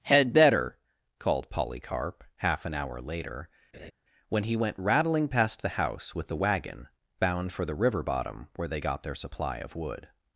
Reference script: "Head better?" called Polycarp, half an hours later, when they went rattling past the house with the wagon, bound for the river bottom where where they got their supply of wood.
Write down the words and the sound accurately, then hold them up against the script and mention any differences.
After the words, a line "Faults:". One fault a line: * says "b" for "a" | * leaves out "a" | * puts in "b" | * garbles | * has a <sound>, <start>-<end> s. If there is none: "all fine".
"Head better?" called Polycarp, half an hour later, when he went rattling past the house with the wagon, bound for the river bottom where they got their supply of wood.
Faults:
* says "hour" for "hours"
* has a laugh, 3.7-3.9 s
* says "he" for "they"
* leaves out "where"